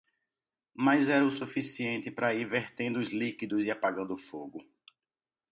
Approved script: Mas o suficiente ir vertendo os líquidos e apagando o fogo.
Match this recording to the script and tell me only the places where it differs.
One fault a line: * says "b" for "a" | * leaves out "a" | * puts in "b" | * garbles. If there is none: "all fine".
* puts in "era"
* puts in "para"